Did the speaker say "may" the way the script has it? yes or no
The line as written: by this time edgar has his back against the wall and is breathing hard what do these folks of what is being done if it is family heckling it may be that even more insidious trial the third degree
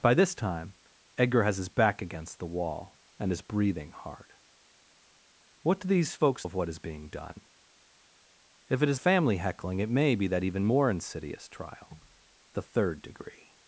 yes